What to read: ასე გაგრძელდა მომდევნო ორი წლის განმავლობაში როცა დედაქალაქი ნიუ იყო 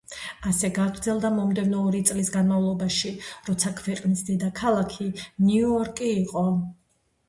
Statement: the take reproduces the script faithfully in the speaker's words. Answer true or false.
false